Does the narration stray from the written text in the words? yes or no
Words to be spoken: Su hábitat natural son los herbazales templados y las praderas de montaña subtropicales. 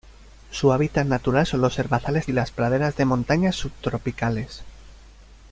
yes